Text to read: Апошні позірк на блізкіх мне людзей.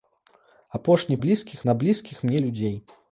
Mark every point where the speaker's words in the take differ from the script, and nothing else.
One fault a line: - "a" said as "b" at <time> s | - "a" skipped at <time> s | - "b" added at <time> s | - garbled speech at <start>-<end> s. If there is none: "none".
- "позірк" said as "блізкіх" at 1.2 s